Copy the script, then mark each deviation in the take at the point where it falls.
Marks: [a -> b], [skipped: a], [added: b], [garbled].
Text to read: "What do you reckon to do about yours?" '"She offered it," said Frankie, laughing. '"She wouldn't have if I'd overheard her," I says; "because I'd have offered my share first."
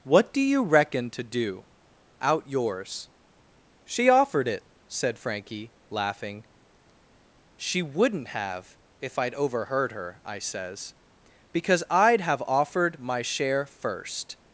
"What do you reckon to do [about -> out] yours?" '"She offered it," said Frankie, laughing. '"She wouldn't have if I'd overheard her," I says; "because I'd have offered my share first."